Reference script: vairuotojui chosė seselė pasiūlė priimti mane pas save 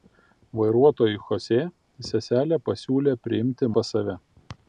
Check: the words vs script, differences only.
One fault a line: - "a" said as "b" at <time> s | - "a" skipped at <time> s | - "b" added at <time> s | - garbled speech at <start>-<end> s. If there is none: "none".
- "mane" skipped at 3.7 s